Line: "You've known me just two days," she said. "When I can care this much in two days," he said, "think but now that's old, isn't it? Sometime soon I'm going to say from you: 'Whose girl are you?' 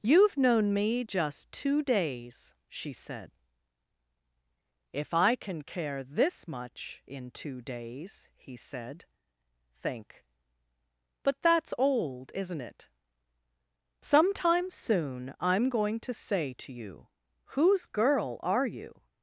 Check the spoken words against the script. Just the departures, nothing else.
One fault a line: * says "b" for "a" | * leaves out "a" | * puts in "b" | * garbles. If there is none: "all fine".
* says "If" for "When"
* leaves out "now"
* says "to" for "from"